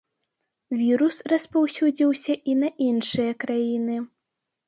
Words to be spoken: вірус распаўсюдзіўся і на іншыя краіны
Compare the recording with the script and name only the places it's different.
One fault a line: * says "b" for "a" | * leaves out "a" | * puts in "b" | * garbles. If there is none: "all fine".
all fine